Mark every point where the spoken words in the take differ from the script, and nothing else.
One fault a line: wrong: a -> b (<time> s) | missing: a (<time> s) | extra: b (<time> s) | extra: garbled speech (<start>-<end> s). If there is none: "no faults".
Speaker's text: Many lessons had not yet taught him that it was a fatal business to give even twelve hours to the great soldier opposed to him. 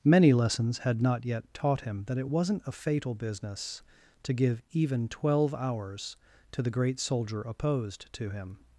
wrong: was -> wasn't (2.3 s)